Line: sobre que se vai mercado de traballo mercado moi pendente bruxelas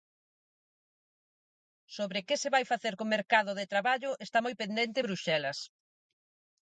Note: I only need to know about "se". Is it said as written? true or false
true